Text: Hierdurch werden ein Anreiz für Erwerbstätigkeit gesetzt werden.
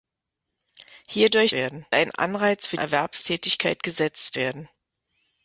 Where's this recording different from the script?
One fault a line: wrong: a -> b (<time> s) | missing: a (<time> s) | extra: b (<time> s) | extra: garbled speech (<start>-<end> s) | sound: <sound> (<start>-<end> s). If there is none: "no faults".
no faults